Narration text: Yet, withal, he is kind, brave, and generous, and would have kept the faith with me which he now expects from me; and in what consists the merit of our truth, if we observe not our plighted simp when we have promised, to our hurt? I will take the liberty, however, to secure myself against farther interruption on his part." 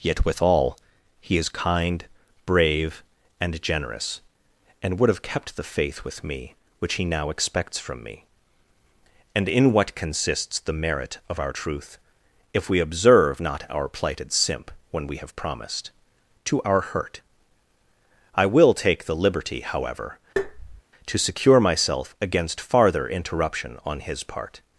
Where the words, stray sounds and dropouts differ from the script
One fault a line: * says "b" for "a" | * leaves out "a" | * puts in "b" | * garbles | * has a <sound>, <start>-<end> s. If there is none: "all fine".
* has a tap, 20.4-20.8 s